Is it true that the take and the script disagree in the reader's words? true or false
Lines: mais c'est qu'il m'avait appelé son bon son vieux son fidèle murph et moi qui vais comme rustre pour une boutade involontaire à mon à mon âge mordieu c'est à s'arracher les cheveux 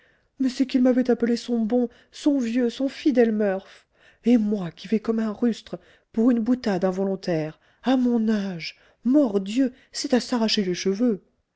true